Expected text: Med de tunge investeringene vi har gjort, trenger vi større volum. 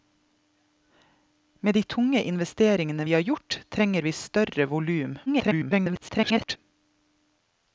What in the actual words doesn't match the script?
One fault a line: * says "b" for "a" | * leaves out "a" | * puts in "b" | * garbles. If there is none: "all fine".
* garbles